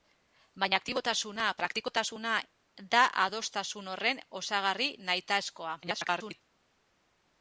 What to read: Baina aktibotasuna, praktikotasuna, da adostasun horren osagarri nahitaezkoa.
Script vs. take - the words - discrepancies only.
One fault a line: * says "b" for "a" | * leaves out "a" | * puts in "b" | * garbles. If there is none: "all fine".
* garbles